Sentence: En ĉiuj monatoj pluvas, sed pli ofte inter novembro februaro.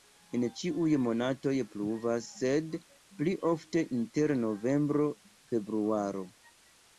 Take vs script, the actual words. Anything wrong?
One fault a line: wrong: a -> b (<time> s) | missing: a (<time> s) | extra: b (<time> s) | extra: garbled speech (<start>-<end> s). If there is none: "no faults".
no faults